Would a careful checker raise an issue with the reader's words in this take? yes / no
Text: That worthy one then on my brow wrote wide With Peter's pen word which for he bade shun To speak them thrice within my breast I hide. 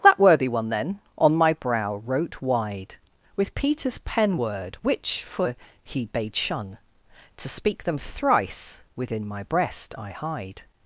no